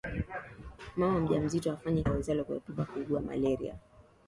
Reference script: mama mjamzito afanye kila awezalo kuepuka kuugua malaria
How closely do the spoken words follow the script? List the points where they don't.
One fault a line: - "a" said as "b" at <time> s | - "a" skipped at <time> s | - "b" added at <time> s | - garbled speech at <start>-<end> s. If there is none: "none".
- "kila" skipped at 2.0 s